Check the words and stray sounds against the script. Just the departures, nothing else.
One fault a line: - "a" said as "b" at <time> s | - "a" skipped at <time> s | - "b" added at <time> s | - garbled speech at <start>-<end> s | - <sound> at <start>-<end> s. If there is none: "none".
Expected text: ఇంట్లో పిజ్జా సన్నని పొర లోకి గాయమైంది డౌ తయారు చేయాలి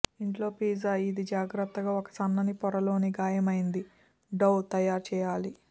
- "ఇది జాగ్రత్తగా ఒక" added at 1.0 s